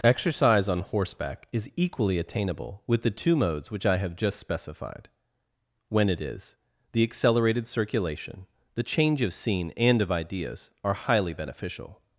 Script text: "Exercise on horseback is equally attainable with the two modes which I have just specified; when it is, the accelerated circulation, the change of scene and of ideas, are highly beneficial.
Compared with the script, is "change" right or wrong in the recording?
right